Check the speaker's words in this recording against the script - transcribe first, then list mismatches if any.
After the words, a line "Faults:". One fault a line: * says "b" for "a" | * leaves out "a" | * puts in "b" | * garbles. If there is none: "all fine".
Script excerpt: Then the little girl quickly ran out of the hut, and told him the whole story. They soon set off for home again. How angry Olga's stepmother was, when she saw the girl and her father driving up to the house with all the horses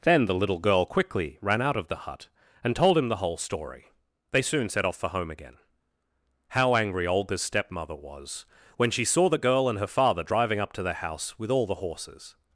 Then the little girl quickly ran out of the hut, and told him the whole story. They soon set off for home again. How angry Olga's stepmother was, when she saw the girl and her father driving up to the house with all the horses
Faults:
all fine